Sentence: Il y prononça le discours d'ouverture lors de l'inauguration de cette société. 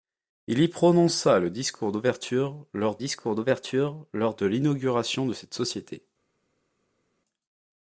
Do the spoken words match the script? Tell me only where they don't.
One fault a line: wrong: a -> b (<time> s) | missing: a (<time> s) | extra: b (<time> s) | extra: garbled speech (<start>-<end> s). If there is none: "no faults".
extra: discours d'ouverture lors (3.0 s)